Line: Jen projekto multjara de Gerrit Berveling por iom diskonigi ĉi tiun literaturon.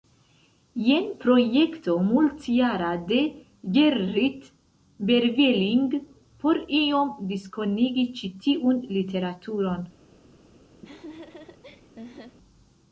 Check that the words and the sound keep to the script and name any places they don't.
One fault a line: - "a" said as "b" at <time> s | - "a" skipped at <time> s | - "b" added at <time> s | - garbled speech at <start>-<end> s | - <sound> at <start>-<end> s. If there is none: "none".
- laugh at 10.8-12.4 s